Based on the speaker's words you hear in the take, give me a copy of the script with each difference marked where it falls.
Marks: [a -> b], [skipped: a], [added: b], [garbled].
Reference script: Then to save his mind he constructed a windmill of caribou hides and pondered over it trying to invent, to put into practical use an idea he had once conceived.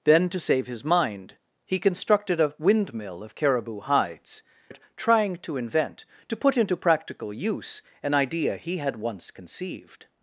Then to save his mind he constructed a windmill of caribou hides [skipped: and pondered over] it trying to invent, to put into practical use an idea he had once conceived.